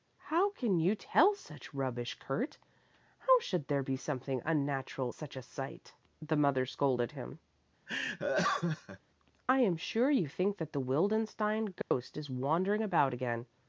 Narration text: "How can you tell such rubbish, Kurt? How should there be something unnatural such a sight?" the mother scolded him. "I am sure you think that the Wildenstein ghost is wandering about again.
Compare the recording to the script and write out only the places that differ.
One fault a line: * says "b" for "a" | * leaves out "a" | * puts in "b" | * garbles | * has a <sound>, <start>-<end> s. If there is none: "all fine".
* has a laugh, 7.9-9.0 s
* has a dropout, 11.8-11.9 s